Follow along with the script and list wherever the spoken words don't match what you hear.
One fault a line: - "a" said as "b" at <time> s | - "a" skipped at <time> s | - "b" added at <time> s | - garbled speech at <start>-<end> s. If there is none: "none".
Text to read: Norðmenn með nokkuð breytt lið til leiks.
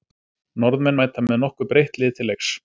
- "mæta" added at 1.0 s